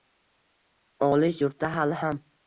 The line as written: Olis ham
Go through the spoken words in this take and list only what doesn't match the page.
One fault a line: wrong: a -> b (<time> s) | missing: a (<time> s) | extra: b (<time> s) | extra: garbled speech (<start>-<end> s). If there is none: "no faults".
extra: yurtda hali (1.4 s)